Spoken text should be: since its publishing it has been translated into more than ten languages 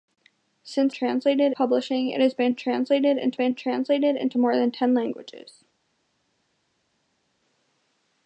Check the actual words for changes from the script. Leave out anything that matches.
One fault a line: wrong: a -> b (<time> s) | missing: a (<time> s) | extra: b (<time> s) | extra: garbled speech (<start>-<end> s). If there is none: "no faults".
wrong: its -> translated (0.9 s)
extra: been translated into (3.3 s)